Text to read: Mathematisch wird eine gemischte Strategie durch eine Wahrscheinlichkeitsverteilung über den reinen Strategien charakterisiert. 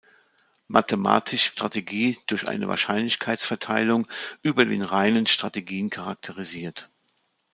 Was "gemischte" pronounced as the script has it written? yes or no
no